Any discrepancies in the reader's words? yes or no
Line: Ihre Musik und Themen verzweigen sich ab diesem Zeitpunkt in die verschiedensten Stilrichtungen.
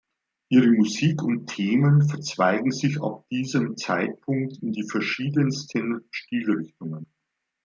no